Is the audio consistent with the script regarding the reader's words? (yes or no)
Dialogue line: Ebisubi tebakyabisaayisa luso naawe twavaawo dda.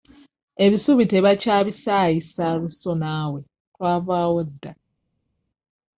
yes